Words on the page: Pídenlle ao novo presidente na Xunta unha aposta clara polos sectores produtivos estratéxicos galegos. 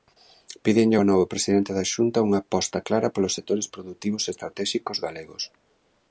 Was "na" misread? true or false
true